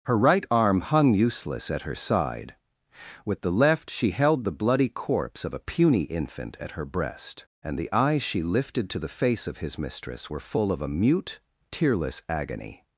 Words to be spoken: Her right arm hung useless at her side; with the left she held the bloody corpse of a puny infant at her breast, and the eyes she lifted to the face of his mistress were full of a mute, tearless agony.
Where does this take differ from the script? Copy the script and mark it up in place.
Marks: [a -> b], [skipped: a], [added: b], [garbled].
Her right arm hung useless at her side; with the left she held the bloody corpse of a puny infant at her breast, and the eyes she lifted to the face of his mistress were full of a mute, tearless agony.